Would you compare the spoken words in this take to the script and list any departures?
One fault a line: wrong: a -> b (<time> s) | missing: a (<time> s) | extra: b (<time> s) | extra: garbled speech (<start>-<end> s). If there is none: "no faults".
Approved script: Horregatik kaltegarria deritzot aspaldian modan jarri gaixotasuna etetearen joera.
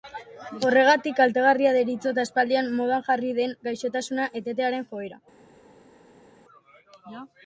extra: den (3.4 s)